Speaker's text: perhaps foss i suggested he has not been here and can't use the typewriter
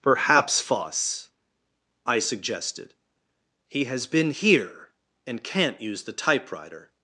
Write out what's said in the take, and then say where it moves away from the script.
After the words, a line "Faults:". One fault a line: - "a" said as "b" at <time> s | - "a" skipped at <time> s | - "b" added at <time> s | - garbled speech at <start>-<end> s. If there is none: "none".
perhaps foss i suggested he has been here and can't use the typewriter
Faults:
- "not" skipped at 4.1 s